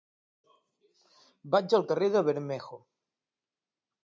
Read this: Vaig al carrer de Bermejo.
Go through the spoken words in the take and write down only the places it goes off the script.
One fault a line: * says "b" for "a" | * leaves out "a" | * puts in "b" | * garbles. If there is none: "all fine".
all fine